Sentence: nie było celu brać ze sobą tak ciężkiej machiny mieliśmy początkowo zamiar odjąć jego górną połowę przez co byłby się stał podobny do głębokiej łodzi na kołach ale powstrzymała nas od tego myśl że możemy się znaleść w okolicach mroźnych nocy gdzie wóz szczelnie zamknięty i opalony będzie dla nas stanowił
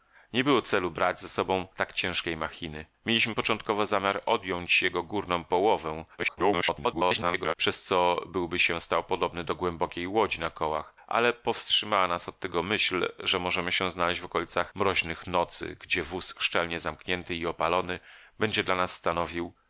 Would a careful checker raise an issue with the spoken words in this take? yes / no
yes